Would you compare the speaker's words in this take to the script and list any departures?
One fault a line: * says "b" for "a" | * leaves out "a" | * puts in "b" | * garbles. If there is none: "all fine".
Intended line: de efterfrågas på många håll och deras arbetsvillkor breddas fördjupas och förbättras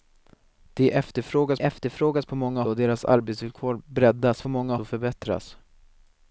* puts in "efterfrågas"
* leaves out "håll"
* says "många" for "fördjupas"